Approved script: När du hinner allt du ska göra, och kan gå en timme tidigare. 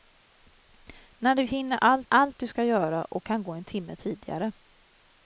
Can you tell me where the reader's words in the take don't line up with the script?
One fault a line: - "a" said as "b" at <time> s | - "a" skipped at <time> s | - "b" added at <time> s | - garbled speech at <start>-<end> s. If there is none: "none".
- "allt" added at 2.1 s